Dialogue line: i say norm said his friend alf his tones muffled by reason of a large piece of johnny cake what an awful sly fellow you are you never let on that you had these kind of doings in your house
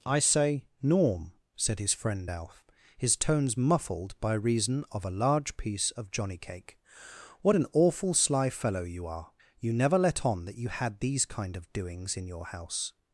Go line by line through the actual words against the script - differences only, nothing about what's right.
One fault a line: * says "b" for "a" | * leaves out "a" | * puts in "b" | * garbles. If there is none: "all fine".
all fine